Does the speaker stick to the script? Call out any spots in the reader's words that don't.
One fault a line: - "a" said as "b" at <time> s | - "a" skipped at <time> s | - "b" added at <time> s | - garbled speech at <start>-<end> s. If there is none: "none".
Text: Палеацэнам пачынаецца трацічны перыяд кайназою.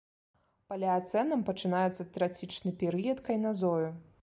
none